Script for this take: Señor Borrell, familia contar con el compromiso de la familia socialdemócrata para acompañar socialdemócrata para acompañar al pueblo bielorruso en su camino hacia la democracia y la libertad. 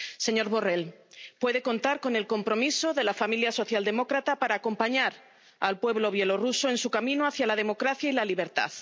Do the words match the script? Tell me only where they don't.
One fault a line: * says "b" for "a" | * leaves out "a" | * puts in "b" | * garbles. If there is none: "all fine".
* says "puede" for "familia"
* leaves out "socialdemócrata para acompañar"